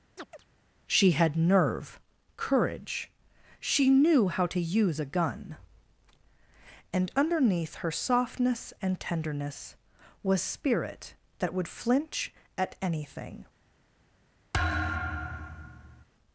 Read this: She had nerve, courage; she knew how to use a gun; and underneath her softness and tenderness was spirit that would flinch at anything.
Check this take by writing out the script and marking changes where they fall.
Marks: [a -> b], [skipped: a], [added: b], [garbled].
She had nerve, courage; she knew how to use a gun; and underneath her softness and tenderness was spirit that would flinch at anything.